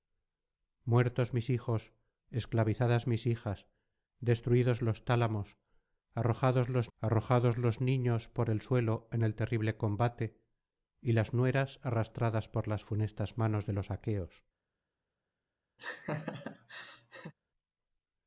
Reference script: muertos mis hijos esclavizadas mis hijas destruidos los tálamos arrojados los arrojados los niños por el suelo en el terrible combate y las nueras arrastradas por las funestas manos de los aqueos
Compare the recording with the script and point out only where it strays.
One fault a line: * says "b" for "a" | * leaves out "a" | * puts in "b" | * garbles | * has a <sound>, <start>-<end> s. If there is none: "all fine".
* has a laugh, 15.8-17.3 s